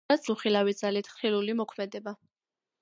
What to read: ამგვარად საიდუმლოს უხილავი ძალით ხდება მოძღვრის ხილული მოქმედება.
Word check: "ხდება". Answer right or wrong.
wrong